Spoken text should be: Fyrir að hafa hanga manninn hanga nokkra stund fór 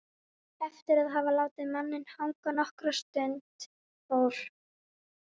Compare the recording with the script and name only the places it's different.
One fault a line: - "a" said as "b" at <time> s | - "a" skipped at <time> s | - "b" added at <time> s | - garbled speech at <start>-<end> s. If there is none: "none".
- "Fyrir" said as "Eftir" at 0.7 s
- "hanga" said as "látið" at 1.4 s